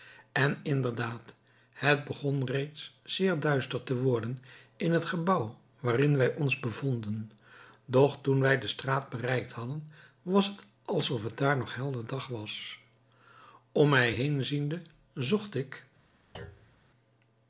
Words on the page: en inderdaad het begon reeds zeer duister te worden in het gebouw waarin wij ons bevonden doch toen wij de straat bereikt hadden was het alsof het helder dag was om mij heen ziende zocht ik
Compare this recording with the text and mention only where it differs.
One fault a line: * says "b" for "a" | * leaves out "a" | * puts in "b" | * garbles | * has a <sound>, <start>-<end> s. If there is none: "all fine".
* puts in "daar nog"
* has a thud, 16.3-16.8 s